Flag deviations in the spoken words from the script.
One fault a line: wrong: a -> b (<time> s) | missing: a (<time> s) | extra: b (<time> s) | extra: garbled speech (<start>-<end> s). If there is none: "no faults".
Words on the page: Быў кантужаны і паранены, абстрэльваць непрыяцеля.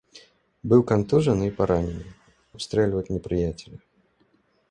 no faults